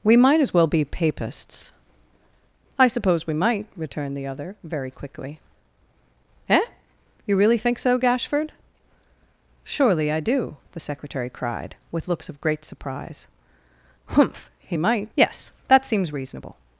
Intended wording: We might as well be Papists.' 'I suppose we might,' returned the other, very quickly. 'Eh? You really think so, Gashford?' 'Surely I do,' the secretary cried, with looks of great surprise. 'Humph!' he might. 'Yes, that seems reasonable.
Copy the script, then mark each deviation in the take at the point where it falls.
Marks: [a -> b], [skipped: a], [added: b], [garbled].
We might as well be Papists.' 'I suppose we might,' returned the other, very quickly. 'Eh? You really think so, Gashford?' 'Surely I do,' the secretary cried, with looks of great surprise. 'Humph!' he might. 'Yes, that seems reasonable.